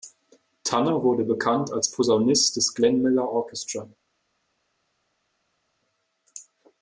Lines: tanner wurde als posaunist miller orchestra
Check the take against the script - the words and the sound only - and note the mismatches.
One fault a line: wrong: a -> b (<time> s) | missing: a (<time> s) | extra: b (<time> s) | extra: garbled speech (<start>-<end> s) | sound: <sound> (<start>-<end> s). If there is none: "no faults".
extra: bekannt (1.2 s)
extra: des glenn (2.5 s)